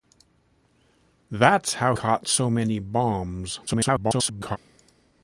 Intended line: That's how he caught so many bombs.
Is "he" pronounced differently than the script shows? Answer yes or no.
yes